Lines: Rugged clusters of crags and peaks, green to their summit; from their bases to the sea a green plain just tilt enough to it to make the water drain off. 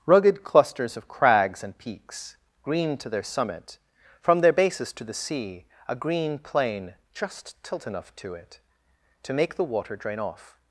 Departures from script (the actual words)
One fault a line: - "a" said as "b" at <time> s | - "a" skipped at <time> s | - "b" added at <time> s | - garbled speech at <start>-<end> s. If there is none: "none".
none